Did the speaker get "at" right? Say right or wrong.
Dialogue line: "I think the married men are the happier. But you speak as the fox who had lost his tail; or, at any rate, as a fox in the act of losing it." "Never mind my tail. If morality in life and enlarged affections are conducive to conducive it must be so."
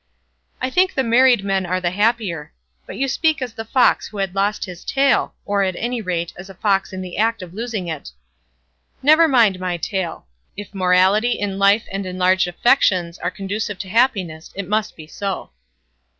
right